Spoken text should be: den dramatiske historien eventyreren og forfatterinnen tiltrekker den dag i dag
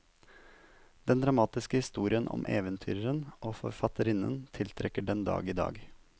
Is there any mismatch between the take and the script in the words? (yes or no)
yes